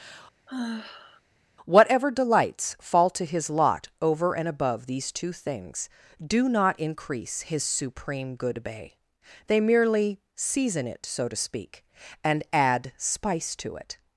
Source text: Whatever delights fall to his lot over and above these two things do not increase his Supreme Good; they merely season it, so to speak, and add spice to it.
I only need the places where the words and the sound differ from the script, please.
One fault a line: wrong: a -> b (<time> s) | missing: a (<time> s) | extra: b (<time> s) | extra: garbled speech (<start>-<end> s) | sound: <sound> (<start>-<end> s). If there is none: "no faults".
sound: sigh (0.5-1.2 s)
extra: bay (8.6 s)